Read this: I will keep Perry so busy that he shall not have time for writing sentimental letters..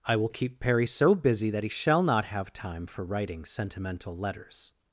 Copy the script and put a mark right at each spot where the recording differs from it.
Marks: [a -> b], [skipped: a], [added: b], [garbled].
I will keep Perry so busy that he shall not have time for writing sentimental letters..